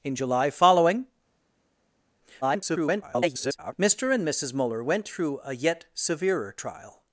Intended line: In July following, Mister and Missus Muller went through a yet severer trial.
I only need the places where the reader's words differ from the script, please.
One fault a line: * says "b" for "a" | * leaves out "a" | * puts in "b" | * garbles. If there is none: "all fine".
* garbles